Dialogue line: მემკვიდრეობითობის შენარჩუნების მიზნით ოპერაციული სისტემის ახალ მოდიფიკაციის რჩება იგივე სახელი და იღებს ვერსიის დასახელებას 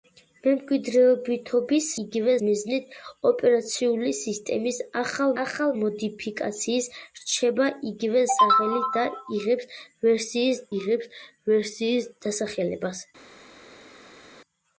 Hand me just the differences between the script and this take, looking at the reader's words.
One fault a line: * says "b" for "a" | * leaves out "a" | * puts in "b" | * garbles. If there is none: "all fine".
* says "იგივე" for "შენარჩუნების"
* puts in "ახალ"
* puts in "იღებს ვერსიის"